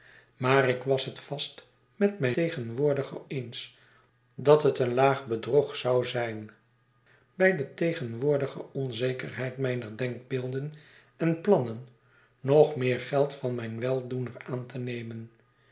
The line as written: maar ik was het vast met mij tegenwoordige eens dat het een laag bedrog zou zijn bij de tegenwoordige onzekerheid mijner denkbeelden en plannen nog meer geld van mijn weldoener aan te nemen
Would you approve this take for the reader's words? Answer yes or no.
yes